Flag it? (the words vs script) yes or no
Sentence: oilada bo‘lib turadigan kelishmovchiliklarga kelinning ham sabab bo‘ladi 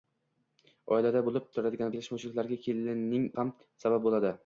no